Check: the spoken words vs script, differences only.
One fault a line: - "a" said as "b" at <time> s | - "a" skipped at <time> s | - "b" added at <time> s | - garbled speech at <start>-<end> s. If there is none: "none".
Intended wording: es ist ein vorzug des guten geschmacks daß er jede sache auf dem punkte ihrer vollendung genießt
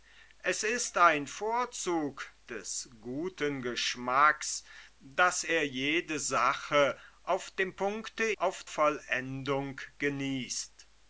- "ihrer" said as "auf" at 8.3 s